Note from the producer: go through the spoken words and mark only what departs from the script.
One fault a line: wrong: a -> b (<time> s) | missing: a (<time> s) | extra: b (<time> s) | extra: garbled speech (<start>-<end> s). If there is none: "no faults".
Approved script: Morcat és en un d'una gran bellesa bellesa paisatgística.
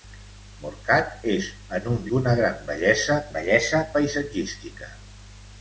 no faults